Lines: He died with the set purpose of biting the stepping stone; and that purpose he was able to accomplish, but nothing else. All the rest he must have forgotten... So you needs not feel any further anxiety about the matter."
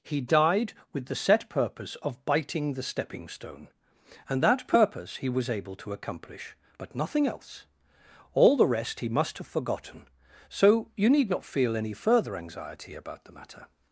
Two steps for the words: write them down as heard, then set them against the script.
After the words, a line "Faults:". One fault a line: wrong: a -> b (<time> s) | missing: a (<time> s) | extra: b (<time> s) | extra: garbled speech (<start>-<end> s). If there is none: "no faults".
He died with the set purpose of biting the stepping stone; and that purpose he was able to accomplish, but nothing else. All the rest he must have forgotten... So you need not feel any further anxiety about the matter."
Faults:
wrong: needs -> need (11.1 s)